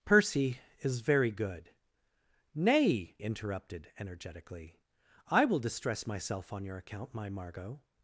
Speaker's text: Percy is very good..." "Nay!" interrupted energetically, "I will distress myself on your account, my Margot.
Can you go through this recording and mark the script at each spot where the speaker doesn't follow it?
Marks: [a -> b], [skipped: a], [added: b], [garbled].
Percy is very good..." "Nay!" interrupted energetically, "I will distress myself on your account, my Margot.